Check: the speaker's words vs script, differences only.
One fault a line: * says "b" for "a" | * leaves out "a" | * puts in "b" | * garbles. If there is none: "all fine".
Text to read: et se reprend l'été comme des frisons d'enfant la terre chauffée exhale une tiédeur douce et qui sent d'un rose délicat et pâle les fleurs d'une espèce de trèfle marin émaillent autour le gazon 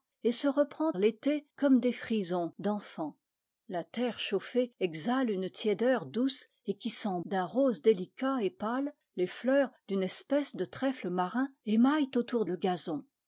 all fine